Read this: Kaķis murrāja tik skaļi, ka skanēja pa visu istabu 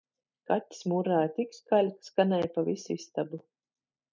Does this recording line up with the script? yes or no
yes